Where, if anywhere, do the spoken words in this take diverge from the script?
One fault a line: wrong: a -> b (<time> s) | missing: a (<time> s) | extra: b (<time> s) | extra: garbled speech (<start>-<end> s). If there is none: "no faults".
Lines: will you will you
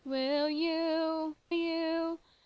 missing: will (1.4 s)